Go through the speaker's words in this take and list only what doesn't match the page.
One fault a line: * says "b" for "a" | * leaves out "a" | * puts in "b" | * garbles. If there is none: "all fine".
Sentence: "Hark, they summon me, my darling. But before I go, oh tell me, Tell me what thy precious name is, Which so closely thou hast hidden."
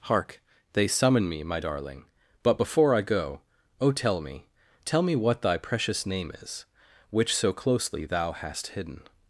all fine